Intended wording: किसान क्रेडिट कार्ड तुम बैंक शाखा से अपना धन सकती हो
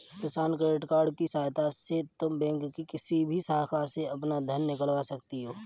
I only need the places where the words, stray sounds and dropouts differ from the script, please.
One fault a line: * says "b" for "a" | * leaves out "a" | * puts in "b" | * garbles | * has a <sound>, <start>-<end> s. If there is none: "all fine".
* puts in "की सहायता से"
* puts in "की किसी भी"
* puts in "निकलवा"